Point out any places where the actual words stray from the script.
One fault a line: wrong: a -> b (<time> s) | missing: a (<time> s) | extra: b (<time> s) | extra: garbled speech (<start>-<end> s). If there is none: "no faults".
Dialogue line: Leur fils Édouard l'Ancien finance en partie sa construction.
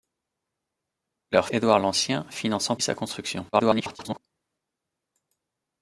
missing: fils (1.5 s)
missing: partie (2.8 s)
extra: garbled speech (3.5-4.2 s)